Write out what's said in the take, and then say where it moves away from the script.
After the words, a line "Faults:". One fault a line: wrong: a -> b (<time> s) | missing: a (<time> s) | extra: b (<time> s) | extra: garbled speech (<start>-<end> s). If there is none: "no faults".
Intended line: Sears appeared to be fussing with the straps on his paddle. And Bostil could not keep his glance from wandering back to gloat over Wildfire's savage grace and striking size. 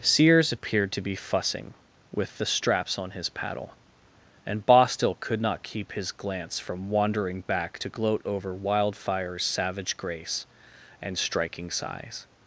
Sears appeared to be fussing with the straps on his paddle. And Bostil could not keep his glance from wandering back to gloat over Wildfire's savage grace and striking size.
Faults:
no faults